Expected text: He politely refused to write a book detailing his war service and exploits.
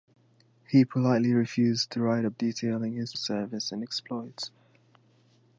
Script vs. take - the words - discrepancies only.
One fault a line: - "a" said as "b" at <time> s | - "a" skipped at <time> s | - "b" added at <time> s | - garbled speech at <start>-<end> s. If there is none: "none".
- "book" skipped at 2.3 s
- "war" skipped at 3.2 s